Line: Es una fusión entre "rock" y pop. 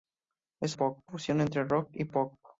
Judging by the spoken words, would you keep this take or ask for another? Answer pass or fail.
fail